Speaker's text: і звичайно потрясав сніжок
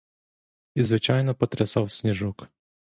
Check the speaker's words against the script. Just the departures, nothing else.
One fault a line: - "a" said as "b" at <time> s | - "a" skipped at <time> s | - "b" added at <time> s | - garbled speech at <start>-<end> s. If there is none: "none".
none